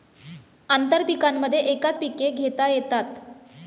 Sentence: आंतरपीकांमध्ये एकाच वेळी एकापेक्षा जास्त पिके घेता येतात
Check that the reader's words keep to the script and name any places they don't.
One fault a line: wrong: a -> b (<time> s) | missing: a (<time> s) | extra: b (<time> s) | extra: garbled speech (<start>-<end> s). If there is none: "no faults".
missing: वेळी एकापेक्षा जास्त (2.0 s)